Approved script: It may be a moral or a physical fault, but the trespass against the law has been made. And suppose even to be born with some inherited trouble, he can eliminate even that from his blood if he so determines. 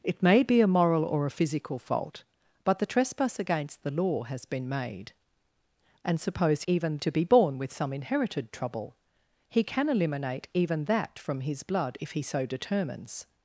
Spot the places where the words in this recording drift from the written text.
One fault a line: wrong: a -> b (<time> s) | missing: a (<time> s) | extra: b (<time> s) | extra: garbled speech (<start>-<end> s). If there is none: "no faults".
no faults